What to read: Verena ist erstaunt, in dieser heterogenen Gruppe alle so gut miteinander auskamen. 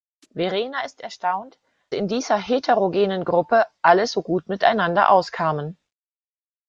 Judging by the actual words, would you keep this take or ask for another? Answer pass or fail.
pass